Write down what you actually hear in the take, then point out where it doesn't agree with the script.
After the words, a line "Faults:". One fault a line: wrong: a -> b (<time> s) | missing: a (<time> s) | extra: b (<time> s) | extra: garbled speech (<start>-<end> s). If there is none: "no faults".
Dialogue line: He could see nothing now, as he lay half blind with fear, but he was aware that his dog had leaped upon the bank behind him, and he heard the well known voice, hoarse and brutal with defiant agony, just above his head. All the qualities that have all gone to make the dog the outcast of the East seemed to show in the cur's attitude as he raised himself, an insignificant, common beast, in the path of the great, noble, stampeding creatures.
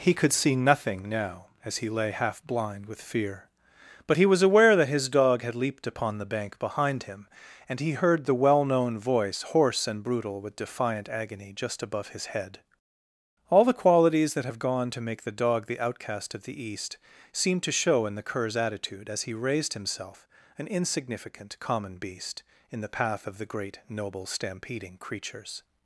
He could see nothing now, as he lay half blind with fear, but he was aware that his dog had leaped upon the bank behind him, and he heard the well known voice, hoarse and brutal with defiant agony, just above his head. All the qualities that have gone to make the dog the outcast of the East seemed to show in the cur's attitude as he raised himself, an insignificant, common beast, in the path of the great, noble, stampeding creatures.
Faults:
missing: all (14.6 s)